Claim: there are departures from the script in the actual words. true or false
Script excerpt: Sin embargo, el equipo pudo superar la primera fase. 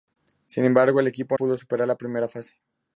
false